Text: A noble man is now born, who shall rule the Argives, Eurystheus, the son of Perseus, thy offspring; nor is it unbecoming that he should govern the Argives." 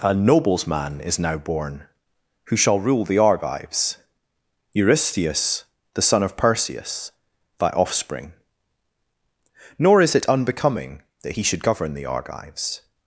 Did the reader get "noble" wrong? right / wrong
wrong